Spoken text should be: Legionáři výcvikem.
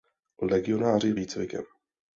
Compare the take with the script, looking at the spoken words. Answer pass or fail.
pass